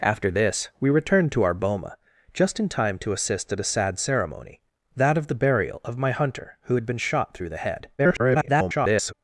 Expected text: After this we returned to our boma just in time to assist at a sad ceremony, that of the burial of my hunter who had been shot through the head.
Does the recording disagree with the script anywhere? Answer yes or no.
yes